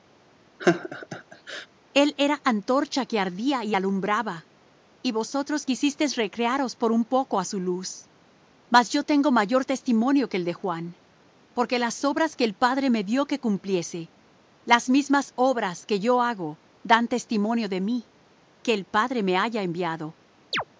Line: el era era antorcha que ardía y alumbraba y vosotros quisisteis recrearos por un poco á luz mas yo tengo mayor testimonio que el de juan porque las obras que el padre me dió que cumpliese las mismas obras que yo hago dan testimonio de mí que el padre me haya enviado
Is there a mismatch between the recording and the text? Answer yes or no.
yes